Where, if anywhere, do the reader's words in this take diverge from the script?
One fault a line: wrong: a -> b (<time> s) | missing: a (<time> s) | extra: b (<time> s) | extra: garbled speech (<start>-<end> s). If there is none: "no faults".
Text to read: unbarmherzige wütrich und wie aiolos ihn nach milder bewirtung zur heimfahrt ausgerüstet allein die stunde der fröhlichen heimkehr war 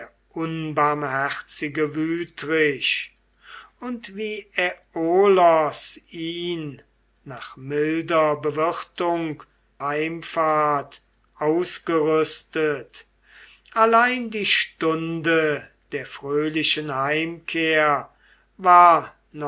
missing: zur (9.4 s)